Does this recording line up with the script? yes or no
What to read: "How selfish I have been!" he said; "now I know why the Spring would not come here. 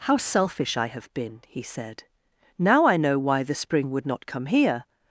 yes